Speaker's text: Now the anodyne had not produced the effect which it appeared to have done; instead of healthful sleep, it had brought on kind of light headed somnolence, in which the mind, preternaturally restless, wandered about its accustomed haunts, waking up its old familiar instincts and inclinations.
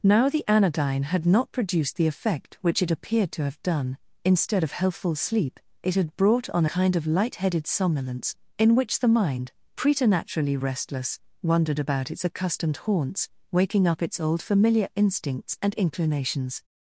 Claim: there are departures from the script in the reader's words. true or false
false